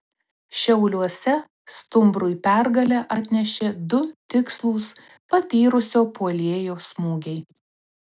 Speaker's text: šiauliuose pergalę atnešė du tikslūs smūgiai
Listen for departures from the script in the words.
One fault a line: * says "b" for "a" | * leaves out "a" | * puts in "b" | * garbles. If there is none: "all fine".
* puts in "stumbrui"
* puts in "patyrusio puolėjo"